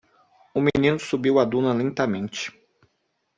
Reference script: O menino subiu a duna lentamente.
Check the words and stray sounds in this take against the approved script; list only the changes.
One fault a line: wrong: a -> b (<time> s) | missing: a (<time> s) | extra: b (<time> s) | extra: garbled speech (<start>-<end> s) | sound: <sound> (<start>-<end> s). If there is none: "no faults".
no faults